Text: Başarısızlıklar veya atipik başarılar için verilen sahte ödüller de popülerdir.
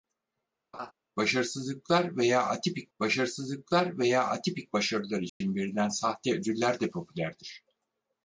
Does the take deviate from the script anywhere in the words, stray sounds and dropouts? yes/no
yes